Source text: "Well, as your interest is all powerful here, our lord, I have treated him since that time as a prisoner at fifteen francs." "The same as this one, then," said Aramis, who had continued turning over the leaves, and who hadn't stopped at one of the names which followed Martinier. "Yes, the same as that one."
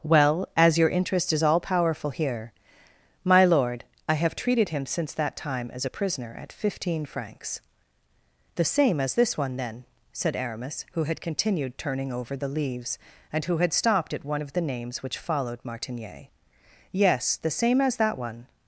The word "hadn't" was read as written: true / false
false